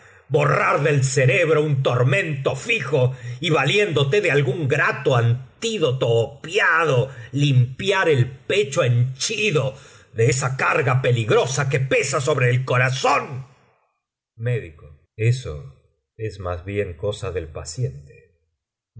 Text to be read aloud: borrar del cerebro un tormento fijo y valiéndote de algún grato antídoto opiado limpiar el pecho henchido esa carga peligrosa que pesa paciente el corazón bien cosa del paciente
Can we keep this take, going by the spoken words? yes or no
no